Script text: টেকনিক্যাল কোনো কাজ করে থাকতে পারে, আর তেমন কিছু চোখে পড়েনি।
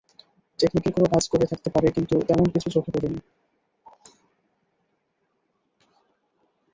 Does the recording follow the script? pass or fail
fail